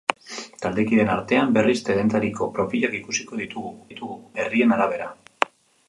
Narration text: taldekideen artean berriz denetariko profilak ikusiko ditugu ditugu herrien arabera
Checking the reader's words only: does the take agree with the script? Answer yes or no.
yes